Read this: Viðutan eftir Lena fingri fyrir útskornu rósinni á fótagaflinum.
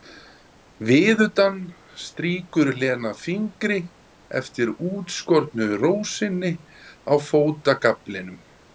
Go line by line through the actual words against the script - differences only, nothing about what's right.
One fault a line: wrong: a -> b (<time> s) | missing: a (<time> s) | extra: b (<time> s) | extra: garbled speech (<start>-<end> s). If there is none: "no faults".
wrong: eftir -> strýkur (2.0 s)
wrong: fyrir -> eftir (4.4 s)